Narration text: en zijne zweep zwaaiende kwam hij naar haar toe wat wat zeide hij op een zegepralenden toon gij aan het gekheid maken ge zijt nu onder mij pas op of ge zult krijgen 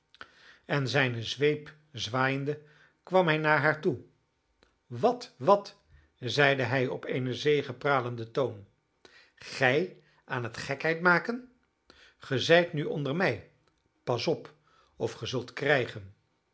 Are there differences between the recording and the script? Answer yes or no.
no